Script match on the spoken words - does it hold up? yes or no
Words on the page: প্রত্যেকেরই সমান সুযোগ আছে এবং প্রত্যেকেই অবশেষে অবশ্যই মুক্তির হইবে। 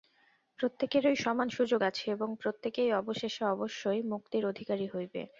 no